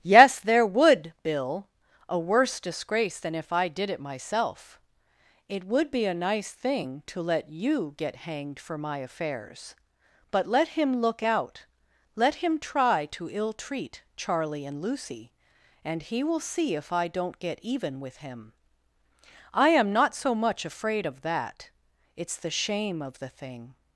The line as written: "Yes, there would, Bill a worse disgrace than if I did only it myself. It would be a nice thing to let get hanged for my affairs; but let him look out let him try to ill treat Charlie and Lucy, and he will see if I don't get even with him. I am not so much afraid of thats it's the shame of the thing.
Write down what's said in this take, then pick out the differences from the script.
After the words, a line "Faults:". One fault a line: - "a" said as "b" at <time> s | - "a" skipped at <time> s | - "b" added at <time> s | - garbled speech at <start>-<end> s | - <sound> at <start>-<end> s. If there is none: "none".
"Yes, there would, Bill a worse disgrace than if I did it myself. It would be a nice thing to let you get hanged for my affairs; but let him look out let him try to ill treat Charlie and Lucy, and he will see if I don't get even with him. I am not so much afraid of that it's the shame of the thing.
Faults:
- "only" skipped at 3.9 s
- "you" added at 7.5 s
- "thats" said as "that" at 21.2 s